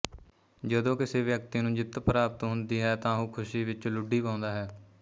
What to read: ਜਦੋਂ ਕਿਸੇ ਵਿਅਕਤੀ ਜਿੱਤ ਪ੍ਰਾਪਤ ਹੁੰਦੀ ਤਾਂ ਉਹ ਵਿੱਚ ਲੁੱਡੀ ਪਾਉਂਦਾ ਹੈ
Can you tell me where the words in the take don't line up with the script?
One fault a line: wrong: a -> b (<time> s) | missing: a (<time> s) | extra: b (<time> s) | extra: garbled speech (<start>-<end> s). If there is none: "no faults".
extra: ਨੂੰ (1.6 s)
extra: ਹੈ (2.8 s)
extra: ਖੁਸ਼ੀ (3.3 s)